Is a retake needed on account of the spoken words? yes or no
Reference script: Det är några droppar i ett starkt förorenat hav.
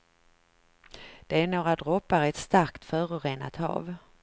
no